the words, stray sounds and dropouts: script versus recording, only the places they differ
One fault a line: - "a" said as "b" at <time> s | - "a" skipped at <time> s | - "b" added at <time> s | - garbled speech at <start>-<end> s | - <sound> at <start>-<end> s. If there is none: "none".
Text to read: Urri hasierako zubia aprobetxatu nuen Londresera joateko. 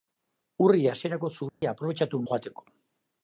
- dropout at 1.5-1.6 s
- "nuen Londresera" skipped at 2.2 s